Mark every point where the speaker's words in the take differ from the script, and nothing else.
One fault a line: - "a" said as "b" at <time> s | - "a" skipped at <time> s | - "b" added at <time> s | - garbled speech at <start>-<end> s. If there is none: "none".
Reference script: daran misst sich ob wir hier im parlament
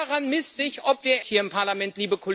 none